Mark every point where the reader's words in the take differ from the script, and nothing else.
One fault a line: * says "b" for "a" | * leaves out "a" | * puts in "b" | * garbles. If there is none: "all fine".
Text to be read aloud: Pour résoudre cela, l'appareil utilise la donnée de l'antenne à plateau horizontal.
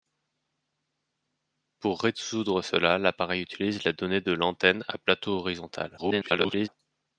* garbles